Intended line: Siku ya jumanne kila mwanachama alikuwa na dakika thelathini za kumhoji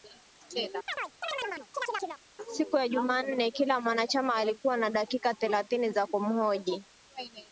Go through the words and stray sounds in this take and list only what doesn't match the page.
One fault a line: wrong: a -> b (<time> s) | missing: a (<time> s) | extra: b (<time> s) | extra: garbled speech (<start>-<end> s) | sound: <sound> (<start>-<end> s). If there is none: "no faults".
sound: chirp (0.9-2.2 s)